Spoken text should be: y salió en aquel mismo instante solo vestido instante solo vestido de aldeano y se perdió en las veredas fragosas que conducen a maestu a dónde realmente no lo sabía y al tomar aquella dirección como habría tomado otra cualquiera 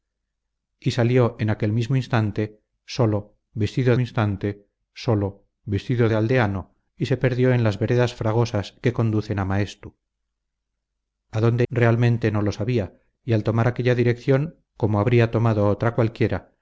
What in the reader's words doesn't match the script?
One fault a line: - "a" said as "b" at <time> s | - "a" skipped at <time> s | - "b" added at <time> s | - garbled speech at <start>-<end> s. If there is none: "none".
none